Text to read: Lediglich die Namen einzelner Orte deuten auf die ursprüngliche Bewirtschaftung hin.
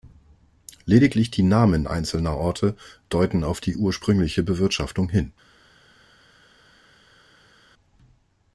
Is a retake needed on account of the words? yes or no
no